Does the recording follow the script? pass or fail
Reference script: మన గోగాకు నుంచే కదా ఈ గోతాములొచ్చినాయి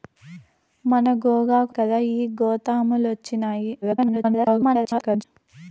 fail